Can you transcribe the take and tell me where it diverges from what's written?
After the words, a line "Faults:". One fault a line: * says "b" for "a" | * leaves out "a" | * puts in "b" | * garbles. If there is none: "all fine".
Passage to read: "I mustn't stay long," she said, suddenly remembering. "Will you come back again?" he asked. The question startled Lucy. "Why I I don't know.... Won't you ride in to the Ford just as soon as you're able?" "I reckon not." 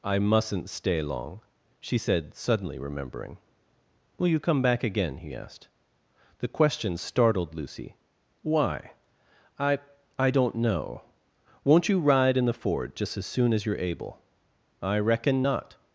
"I mustn't stay long," she said, suddenly remembering. "Will you come back again?" he asked. The question startled Lucy. "Why I I don't know.... Won't you ride in the Ford just as soon as you're able?" "I reckon not."
Faults:
* leaves out "to"